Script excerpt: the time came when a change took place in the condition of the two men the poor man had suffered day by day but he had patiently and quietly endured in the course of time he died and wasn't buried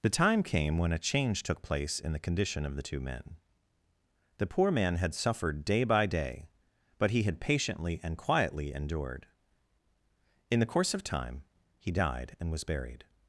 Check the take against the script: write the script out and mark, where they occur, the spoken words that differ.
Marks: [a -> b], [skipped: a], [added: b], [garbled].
the time came when a change took place in the condition of the two men the poor man had suffered day by day but he had patiently and quietly endured in the course of time he died and [wasn't -> was] buried